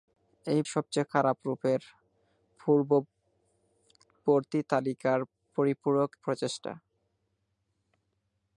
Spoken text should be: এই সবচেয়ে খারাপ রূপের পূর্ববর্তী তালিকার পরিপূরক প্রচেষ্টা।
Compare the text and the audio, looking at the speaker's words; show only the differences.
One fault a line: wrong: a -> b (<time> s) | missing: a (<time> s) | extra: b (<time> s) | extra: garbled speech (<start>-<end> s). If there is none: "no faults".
no faults